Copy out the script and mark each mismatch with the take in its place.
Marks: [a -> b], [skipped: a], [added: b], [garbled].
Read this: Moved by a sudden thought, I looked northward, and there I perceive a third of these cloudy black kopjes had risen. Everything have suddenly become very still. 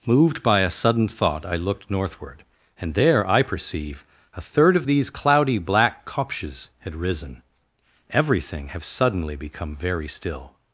Moved by a sudden thought, I looked northward, and there I perceive a third of these cloudy black kopjes had risen. Everything have suddenly become very still.